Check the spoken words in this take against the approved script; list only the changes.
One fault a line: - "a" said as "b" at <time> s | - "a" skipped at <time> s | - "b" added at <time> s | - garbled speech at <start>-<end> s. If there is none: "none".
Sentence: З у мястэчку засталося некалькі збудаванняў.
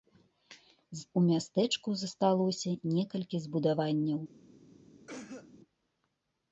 none